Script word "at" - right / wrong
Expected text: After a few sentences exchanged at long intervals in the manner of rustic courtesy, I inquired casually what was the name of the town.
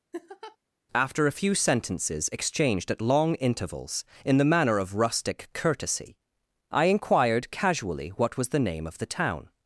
right